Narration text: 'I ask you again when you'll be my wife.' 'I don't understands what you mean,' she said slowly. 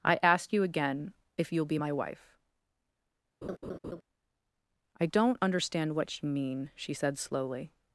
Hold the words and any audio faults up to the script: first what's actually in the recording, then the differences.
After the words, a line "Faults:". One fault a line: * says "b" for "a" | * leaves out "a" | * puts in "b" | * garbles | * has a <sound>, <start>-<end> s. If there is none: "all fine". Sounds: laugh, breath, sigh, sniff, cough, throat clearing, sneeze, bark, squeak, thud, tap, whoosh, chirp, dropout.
'I ask you again if you'll be my wife.' 'I don't understand what you mean,' she said slowly.
Faults:
* says "if" for "when"
* has a laugh, 3.4-4.0 s
* says "understand" for "understands"